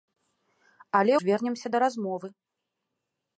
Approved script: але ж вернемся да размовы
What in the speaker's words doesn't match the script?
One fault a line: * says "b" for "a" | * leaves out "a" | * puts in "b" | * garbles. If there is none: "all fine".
all fine